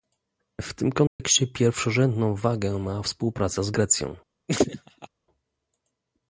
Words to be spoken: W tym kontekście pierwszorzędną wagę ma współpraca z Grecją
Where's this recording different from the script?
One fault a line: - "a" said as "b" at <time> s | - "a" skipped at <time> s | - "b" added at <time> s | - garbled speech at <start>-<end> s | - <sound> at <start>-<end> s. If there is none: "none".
- dropout at 1.1-1.2 s
- laugh at 4.5-5.1 s